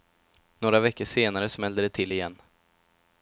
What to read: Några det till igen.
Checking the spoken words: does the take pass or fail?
fail